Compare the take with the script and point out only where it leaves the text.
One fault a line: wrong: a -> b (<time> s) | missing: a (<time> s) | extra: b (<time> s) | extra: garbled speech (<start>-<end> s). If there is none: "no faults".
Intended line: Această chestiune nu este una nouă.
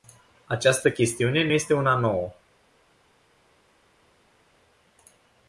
no faults